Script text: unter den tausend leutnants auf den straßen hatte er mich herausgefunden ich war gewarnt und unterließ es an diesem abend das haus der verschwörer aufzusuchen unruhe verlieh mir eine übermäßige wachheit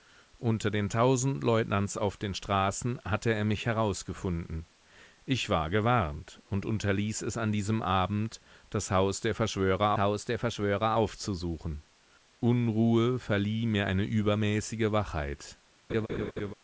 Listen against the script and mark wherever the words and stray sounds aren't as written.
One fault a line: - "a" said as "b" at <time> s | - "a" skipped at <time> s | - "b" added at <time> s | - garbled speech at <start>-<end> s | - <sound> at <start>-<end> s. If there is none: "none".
- "haus der verschwörer" added at 10.0 s
- laugh at 15.9-16.5 s